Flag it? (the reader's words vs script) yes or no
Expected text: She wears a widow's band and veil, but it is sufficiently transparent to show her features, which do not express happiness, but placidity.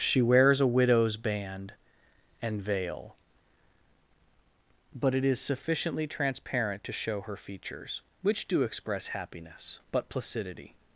yes